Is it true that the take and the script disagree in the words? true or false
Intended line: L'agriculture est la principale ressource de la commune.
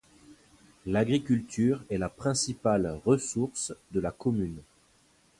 false